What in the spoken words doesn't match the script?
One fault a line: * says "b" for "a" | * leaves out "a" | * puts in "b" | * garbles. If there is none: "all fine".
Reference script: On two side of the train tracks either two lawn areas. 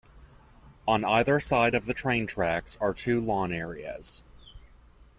* says "either" for "two"
* says "are" for "either"